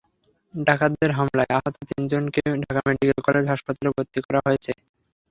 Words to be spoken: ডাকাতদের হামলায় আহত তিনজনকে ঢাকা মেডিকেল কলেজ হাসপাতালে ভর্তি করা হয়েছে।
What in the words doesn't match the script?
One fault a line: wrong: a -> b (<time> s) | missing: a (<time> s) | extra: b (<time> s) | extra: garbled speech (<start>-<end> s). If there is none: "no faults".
no faults